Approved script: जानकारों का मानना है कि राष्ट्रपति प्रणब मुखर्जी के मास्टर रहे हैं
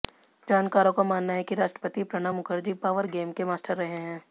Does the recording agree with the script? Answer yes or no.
no